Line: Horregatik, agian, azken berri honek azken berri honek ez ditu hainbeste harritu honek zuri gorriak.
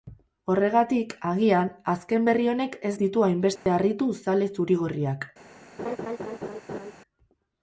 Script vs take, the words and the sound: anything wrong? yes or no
yes